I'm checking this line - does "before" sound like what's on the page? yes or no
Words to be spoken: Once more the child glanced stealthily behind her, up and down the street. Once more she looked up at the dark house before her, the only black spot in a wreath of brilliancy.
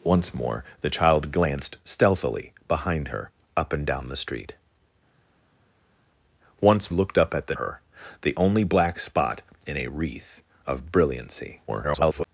no